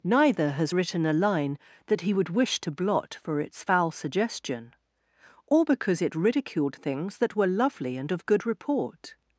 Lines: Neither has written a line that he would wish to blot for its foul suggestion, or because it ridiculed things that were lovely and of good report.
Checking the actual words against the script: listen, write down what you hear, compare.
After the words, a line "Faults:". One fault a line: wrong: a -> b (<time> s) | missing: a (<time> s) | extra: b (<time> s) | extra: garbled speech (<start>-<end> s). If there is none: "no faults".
Neither has written a line that he would wish to blot for its foul suggestion, or because it ridiculed things that were lovely and of good report.
Faults:
no faults